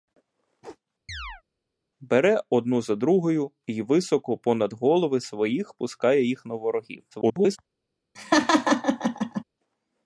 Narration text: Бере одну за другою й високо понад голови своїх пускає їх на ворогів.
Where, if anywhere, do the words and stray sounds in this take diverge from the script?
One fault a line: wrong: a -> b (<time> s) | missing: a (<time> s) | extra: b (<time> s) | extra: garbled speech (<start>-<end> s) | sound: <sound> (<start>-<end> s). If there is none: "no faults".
sound: chirp (1.1-1.4 s)
extra: garbled speech (7.1-7.6 s)
sound: laugh (8.1-9.4 s)